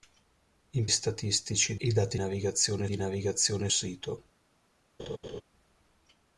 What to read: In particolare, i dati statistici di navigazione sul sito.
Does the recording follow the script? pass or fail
fail